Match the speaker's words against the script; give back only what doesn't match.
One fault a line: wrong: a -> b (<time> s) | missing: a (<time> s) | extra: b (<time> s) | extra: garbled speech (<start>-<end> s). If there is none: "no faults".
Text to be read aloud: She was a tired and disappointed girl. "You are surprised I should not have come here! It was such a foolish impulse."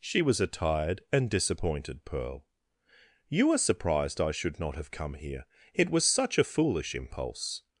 wrong: girl -> pearl (2.0 s)